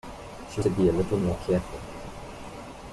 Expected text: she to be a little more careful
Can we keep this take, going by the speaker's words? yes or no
yes